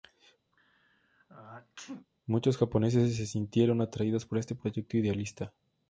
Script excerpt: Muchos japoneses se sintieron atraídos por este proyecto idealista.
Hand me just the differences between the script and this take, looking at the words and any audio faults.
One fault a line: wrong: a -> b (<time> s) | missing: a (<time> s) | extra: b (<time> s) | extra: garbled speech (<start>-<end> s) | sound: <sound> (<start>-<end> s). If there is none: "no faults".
sound: sneeze (0.5-2.1 s)